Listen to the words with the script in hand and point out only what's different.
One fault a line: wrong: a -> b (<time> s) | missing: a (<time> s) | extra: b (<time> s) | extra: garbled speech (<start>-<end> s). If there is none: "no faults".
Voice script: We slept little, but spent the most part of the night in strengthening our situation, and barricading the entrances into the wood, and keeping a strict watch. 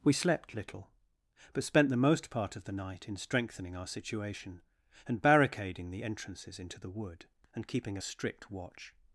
no faults